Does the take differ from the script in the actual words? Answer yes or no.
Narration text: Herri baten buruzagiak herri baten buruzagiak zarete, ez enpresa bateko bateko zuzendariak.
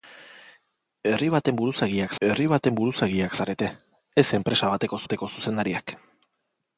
no